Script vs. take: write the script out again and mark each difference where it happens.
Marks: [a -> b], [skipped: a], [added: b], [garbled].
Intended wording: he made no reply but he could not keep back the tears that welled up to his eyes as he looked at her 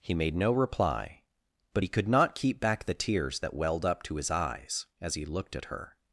he made no reply but he could not keep back the tears that welled up to his eyes as he looked at her